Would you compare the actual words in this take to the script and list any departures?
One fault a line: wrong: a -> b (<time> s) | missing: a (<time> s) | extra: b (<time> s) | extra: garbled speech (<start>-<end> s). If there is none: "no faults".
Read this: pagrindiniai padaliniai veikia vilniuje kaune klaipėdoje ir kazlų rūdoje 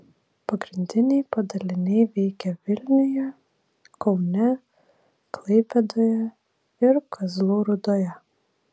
no faults